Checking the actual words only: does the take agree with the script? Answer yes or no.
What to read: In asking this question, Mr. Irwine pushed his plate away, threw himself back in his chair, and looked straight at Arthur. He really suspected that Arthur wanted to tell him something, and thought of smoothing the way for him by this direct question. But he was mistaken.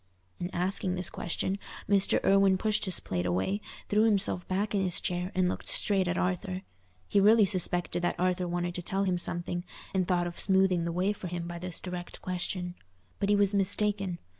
yes